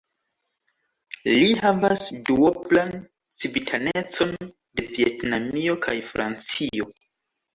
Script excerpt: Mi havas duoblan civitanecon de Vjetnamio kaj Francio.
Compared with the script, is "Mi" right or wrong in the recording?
wrong